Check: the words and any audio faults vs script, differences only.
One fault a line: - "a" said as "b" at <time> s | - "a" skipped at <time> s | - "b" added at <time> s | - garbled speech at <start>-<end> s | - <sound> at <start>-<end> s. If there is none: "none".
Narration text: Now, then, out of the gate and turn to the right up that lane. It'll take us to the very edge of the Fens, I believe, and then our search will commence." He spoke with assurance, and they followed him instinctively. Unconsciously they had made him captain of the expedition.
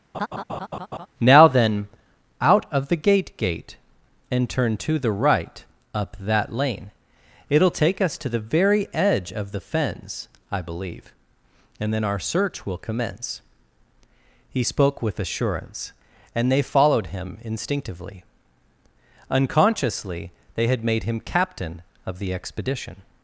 - laugh at 0.1-1.1 s
- "gate" added at 3.4 s